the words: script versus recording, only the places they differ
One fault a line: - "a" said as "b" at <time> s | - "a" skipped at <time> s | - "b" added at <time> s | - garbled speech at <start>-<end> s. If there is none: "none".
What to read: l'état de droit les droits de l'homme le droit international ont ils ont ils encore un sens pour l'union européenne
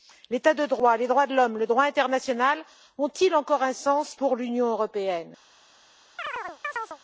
- "ont ils" skipped at 3.4 s